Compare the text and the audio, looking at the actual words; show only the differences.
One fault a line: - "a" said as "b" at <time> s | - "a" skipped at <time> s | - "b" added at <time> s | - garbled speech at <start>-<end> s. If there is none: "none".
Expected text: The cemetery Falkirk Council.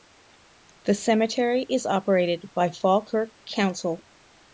- "is operated by" added at 1.7 s